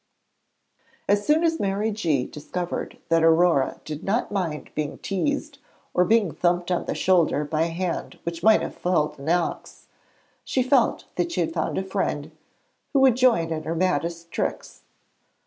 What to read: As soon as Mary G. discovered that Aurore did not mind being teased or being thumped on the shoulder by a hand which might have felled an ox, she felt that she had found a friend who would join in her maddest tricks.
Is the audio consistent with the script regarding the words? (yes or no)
yes